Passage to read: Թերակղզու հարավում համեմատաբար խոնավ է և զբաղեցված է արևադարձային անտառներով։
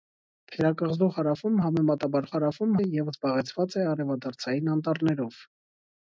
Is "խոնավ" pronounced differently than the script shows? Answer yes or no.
yes